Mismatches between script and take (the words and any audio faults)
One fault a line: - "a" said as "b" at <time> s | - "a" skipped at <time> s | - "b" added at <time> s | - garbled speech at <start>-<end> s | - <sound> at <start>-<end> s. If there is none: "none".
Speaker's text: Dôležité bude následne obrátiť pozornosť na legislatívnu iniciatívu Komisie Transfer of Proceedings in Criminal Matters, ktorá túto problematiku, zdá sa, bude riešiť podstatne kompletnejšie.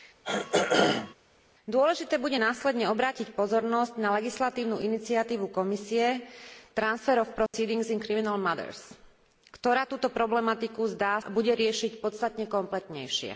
- throat clearing at 0.2-1.1 s
- dropout at 7.5-7.5 s
- "sa" skipped at 11.2 s